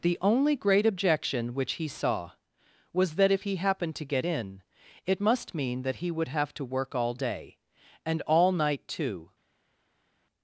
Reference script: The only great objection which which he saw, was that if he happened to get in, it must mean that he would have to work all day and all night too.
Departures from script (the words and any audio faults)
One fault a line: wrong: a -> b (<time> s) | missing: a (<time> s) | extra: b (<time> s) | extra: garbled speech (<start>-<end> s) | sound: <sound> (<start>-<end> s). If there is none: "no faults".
missing: which (1.7 s)